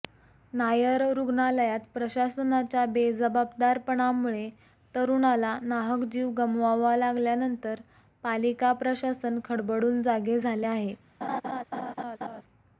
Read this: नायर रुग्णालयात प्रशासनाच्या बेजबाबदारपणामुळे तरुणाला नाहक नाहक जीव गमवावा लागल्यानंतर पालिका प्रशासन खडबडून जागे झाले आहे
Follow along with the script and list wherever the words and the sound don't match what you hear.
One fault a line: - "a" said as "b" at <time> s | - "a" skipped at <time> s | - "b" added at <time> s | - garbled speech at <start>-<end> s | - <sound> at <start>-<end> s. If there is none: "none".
- "नाहक" skipped at 6.0 s
- laugh at 11.2-12.4 s